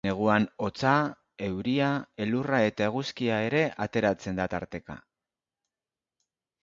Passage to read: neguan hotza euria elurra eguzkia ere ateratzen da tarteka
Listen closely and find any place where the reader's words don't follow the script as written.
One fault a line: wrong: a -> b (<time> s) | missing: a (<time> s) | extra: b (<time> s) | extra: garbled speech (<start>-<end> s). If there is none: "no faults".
extra: eta (2.7 s)